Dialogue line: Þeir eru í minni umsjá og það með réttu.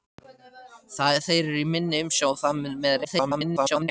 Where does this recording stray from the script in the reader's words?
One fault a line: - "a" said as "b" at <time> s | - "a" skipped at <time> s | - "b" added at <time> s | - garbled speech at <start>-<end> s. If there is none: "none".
- garbled speech at 3.0-3.9 s